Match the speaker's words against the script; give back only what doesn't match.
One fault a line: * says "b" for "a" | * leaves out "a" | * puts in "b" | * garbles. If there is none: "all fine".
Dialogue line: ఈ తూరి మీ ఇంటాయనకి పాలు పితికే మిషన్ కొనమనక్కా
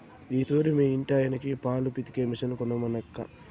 all fine